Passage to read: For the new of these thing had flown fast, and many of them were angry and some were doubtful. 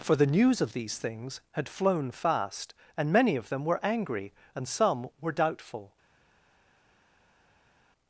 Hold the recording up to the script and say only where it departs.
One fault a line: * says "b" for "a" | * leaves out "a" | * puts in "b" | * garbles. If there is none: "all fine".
* says "news" for "new"
* says "things" for "thing"